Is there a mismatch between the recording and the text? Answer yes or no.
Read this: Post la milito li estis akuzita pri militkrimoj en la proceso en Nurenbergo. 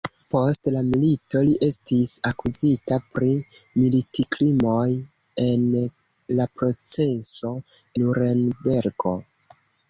yes